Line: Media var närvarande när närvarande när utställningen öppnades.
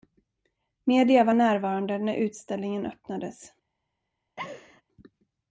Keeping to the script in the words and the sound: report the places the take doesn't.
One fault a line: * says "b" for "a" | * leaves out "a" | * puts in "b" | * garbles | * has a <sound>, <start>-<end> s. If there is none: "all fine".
* leaves out "närvarande när"
* has a laugh, 4.4-4.8 s